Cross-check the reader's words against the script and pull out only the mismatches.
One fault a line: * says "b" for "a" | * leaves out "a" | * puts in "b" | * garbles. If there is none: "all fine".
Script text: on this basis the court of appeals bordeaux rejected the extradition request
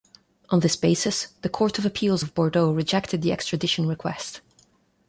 * puts in "of"